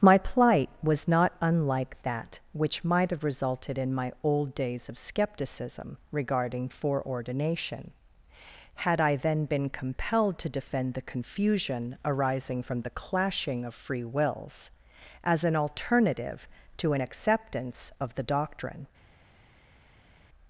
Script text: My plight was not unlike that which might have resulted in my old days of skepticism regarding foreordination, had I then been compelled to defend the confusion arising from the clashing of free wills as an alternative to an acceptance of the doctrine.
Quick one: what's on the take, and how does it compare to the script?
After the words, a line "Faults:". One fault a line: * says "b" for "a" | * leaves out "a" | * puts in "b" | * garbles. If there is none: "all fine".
My plight was not unlike that which might have resulted in my old days of skepticism regarding foreordination, had I then been compelled to defend the confusion arising from the clashing of free wills as an alternative to an acceptance of the doctrine.
Faults:
all fine